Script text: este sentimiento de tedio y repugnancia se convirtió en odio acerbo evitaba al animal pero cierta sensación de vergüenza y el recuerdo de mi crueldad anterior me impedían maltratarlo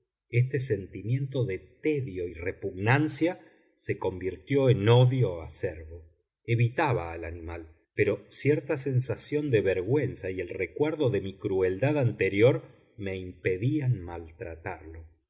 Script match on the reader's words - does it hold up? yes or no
yes